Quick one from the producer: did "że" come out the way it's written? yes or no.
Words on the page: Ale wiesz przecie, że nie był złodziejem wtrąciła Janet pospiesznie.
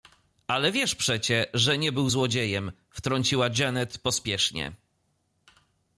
yes